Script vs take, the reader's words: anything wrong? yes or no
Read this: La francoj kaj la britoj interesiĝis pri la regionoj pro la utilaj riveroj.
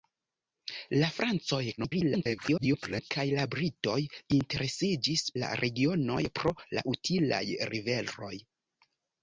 yes